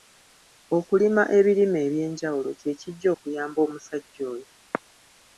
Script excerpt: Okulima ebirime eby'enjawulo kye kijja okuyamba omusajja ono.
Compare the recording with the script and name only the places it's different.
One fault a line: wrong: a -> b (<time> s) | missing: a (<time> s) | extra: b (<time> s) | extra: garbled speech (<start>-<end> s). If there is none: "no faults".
wrong: ono -> oyo (4.3 s)